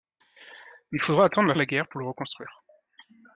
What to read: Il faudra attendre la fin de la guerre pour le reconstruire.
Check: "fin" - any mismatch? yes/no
yes